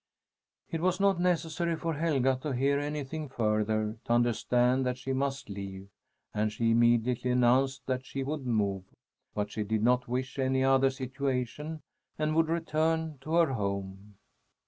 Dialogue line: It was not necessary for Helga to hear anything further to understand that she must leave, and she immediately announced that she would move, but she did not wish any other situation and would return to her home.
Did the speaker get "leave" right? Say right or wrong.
right